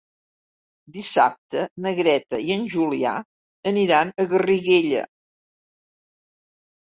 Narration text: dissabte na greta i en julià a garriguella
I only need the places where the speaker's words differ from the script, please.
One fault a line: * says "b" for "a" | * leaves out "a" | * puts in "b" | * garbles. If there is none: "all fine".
* puts in "aniran"